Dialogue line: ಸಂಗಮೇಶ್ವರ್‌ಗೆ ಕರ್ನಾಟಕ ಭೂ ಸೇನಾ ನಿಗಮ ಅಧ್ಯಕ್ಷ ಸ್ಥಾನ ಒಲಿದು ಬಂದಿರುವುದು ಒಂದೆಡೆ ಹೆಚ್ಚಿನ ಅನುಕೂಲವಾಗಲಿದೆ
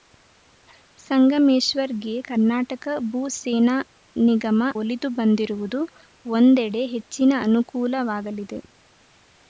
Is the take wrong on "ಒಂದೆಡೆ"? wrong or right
right